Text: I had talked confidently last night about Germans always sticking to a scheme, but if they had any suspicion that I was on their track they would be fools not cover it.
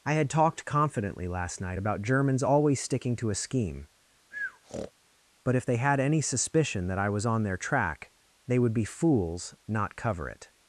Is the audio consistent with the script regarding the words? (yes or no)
yes